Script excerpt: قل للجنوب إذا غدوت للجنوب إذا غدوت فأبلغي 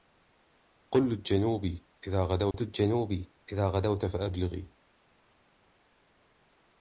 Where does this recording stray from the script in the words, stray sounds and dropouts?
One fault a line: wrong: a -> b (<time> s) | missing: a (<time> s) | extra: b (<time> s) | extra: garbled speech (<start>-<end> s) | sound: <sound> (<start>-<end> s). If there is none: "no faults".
sound: dropout (2.5-2.5 s)